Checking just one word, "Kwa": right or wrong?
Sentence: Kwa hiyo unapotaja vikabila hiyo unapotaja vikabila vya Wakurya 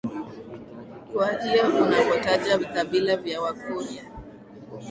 right